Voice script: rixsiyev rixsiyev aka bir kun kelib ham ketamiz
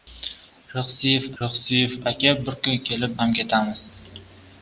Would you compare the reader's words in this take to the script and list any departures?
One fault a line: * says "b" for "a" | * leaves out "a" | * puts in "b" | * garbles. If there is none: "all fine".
all fine